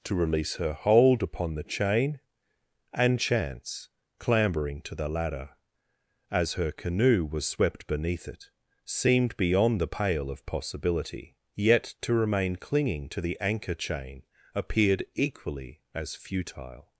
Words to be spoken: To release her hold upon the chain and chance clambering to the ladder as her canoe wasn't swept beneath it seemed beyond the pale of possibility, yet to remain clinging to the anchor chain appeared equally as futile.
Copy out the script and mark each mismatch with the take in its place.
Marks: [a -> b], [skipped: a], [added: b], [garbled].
To release her hold upon the chain and chance clambering to the ladder as her canoe [wasn't -> was] swept beneath it seemed beyond the pale of possibility, yet to remain clinging to the anchor chain appeared equally as futile.